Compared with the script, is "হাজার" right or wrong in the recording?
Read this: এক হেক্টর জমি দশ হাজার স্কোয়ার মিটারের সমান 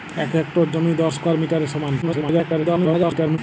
wrong